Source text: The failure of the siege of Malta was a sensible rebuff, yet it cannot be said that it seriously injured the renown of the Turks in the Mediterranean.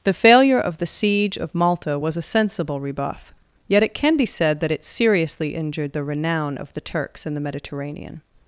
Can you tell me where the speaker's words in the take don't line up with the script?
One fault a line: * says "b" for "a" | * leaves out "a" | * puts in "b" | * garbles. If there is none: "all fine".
* says "can" for "cannot"